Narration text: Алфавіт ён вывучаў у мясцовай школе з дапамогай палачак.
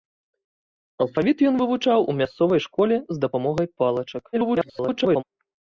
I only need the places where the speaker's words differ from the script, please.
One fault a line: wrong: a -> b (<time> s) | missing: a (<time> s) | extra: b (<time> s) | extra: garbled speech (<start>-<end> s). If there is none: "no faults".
extra: garbled speech (4.3-5.2 s)